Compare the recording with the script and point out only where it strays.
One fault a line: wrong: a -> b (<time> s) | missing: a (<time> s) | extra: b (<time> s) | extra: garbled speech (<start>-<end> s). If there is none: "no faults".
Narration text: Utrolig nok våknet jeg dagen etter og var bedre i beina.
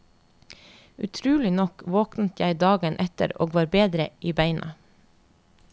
no faults